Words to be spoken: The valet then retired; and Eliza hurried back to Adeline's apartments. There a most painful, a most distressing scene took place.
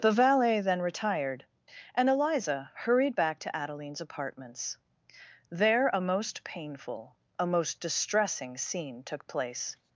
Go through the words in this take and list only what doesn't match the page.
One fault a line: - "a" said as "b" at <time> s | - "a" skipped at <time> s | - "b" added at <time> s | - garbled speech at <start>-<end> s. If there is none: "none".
none